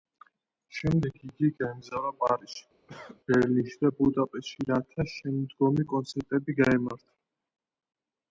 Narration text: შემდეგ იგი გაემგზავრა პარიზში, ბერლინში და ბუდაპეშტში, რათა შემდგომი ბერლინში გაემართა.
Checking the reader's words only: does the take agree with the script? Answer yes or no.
no